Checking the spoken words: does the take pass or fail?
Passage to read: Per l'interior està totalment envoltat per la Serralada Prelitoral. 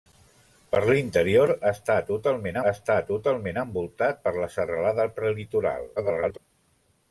fail